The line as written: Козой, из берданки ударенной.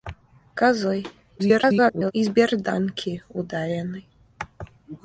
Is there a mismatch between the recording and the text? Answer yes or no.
yes